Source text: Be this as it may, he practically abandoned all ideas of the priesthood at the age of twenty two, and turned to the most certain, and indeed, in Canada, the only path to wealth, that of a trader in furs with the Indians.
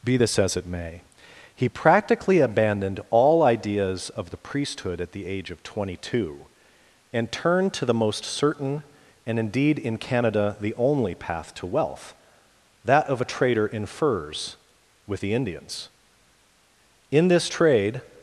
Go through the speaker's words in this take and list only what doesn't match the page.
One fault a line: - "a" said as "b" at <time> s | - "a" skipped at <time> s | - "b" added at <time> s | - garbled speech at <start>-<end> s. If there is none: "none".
- "In this trade" added at 17.1 s